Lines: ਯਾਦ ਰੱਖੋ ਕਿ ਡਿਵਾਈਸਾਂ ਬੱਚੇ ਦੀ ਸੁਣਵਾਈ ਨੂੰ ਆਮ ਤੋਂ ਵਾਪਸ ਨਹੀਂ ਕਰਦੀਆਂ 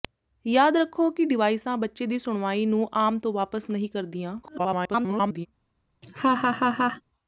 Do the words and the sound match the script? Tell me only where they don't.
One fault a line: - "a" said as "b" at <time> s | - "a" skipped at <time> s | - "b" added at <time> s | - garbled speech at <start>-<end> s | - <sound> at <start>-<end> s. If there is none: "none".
- garbled speech at 4.4-5.5 s
- laugh at 6.0-7.0 s